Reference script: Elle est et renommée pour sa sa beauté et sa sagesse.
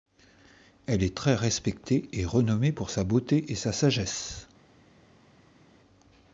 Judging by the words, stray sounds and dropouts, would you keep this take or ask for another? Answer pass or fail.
fail